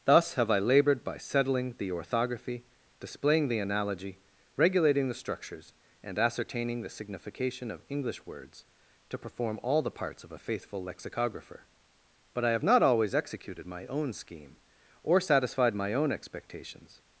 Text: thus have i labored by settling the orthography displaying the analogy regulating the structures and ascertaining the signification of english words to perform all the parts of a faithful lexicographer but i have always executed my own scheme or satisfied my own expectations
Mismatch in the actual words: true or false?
true